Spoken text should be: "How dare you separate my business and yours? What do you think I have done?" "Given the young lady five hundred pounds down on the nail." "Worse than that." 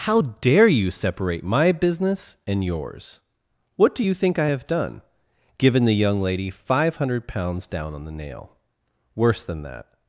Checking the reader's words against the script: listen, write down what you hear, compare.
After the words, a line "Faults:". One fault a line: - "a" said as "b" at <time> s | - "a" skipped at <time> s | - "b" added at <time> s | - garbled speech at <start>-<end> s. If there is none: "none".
"How dare you separate my business and yours? What do you think I have done?" "Given the young lady five hundred pounds down on the nail." "Worse than that."
Faults:
none